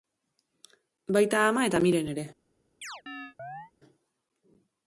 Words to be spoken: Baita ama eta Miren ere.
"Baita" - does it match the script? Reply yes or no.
yes